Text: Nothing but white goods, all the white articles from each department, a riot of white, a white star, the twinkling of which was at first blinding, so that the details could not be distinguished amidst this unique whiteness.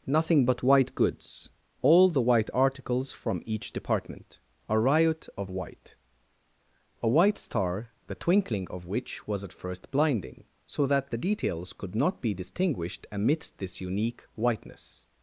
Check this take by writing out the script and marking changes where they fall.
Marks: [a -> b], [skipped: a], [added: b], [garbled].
Nothing but white goods, all the white articles from each department, a riot of white, a white star, the twinkling of which was at first blinding, so that the details could not be distinguished amidst this unique whiteness.